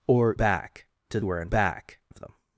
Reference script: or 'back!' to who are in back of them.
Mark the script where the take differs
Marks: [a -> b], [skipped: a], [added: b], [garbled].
or 'back!' to who are in back of them.